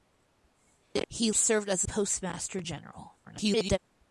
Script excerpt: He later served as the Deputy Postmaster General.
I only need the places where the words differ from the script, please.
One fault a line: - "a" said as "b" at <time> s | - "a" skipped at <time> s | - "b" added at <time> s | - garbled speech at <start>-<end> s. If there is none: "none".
- "later" skipped at 1.3 s
- "the Deputy" skipped at 1.8 s
- garbled speech at 3.2-3.8 s